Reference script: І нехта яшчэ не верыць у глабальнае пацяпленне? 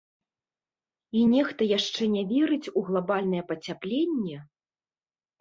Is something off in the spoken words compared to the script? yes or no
no